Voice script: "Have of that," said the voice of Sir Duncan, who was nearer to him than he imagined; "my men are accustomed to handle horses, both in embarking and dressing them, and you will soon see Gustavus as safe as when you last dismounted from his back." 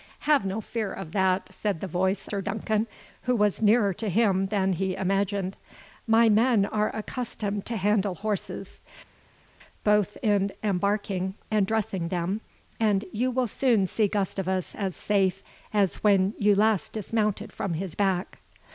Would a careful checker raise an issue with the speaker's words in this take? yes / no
yes